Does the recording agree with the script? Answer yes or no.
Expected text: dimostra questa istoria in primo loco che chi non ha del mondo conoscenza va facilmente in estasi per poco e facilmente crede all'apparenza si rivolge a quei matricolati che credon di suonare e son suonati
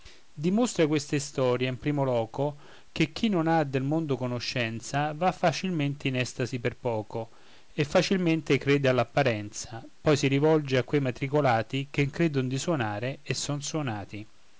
no